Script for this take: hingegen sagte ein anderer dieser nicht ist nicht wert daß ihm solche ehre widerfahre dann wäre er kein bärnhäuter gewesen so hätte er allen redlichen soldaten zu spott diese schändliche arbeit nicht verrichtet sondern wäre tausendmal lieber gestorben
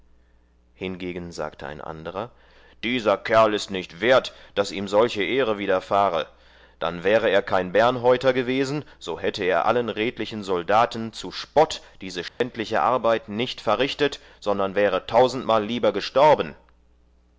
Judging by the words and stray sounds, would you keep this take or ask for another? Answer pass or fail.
fail